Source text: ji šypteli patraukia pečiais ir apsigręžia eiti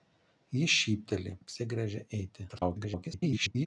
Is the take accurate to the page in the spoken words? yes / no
no